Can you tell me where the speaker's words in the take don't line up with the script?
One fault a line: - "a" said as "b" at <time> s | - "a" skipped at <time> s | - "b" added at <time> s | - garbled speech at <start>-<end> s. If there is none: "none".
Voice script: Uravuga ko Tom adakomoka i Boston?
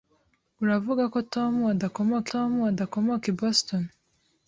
- "Tom adakomoka" added at 2.3 s